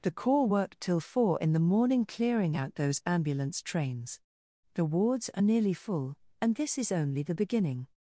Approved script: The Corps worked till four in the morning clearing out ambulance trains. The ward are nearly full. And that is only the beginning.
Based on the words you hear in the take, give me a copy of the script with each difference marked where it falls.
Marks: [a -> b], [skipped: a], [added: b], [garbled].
The Corps worked till four in the morning clearing out [added: those] ambulance trains. The [ward -> wards] are nearly full. And [that -> this] is only the beginning.